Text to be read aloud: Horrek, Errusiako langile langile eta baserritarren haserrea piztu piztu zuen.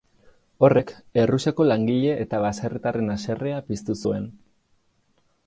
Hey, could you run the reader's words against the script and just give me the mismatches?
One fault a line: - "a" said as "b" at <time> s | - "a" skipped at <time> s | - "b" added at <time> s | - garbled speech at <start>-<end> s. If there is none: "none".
- "langile" skipped at 2.1 s
- "piztu" skipped at 4.0 s